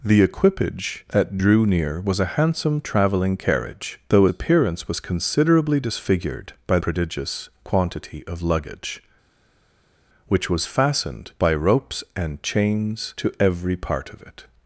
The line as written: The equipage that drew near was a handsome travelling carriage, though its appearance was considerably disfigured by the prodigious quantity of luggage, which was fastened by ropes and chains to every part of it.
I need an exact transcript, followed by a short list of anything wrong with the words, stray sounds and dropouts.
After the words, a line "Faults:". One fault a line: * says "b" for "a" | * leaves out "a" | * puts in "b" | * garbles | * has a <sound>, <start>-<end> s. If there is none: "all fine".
The equipage that drew near was a handsome travelling carriage, though appearance was considerably disfigured by prodigious quantity of luggage, which was fastened by ropes and chains to every part of it.
Faults:
* leaves out "its"
* leaves out "the"